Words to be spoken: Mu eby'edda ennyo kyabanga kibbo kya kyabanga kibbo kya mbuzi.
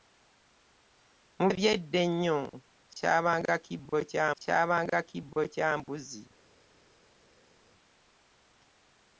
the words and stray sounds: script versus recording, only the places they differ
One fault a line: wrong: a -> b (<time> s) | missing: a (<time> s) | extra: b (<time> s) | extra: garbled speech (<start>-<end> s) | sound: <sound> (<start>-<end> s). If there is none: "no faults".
no faults